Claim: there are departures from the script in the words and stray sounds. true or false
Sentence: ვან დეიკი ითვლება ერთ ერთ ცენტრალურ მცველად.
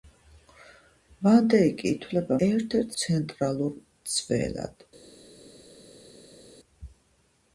false